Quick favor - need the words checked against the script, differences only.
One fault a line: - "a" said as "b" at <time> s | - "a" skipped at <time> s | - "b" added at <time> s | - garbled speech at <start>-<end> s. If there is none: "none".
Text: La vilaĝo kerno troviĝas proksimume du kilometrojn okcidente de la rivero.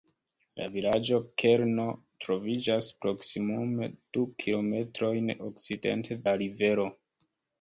- "de" skipped at 6.2 s